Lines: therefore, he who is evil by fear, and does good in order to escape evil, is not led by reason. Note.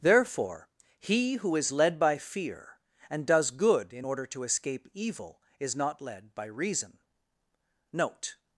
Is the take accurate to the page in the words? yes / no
no